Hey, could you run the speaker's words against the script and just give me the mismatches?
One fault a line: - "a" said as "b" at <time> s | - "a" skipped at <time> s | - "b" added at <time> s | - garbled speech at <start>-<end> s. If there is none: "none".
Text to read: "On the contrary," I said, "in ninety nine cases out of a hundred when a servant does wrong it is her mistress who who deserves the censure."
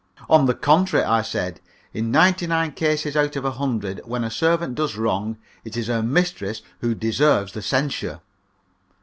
- "who" skipped at 7.0 s